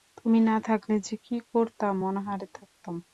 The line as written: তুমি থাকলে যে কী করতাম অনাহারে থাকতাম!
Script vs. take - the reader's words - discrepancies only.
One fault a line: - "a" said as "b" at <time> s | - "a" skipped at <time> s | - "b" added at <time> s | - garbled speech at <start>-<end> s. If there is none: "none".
- "না" added at 0.4 s